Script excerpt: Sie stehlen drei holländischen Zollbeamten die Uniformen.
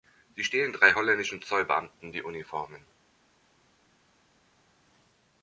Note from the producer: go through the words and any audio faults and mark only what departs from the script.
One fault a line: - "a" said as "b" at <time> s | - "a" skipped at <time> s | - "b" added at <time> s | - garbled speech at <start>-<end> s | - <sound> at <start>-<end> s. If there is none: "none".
none